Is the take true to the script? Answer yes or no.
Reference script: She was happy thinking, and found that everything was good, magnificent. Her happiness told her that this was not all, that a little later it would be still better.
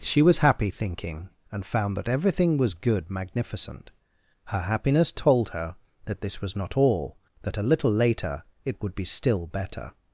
yes